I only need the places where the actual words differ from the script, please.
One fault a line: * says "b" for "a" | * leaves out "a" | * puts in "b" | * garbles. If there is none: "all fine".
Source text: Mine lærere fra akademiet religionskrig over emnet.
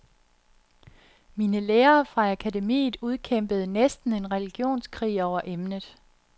* puts in "udkæmpede næsten en"